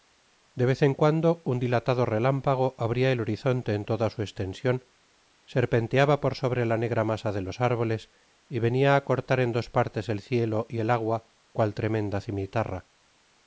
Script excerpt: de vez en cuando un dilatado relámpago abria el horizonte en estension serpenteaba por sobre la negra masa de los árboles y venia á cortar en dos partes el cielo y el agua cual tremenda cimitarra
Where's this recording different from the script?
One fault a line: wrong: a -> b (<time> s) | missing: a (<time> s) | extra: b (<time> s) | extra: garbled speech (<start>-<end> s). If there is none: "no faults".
extra: toda su (3.9 s)